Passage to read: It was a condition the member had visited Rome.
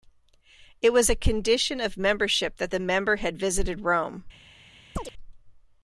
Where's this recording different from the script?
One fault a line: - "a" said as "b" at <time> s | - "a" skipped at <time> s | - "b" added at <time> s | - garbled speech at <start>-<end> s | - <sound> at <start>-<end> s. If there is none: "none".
- "of membership that" added at 1.8 s
- chirp at 5.0-5.1 s